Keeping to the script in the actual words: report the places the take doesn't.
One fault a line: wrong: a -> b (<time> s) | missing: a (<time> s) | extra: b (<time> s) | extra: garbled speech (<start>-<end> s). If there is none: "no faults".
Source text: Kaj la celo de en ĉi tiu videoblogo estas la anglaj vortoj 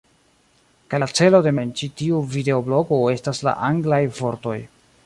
no faults